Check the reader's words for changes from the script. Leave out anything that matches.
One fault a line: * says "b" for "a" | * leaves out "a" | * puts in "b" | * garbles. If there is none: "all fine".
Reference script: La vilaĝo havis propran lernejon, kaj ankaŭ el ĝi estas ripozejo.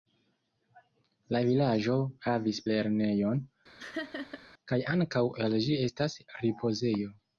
* leaves out "propran"